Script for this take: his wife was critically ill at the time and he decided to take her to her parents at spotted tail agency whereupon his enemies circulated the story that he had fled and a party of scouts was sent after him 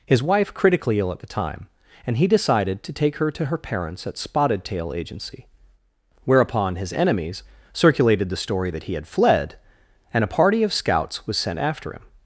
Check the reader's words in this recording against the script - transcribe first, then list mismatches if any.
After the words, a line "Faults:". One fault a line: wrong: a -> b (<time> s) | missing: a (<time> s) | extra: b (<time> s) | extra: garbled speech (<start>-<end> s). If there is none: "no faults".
his wife critically ill at the time and he decided to take her to her parents at spotted tail agency whereupon his enemies circulated the story that he had fled and a party of scouts was sent after him
Faults:
missing: was (0.5 s)